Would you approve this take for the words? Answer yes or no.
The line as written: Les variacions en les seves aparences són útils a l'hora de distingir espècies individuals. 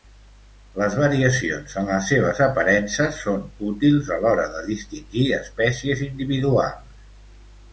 yes